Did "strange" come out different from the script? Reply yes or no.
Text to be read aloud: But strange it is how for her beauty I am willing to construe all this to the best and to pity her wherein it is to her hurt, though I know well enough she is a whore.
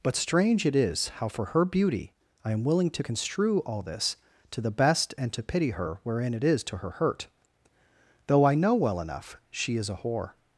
no